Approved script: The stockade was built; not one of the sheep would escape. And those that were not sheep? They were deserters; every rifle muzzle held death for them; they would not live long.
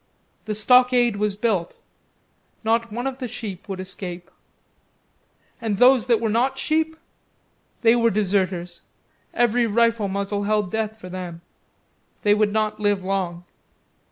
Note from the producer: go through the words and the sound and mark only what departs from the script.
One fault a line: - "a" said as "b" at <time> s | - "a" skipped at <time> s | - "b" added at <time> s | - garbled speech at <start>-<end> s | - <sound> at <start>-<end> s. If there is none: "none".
none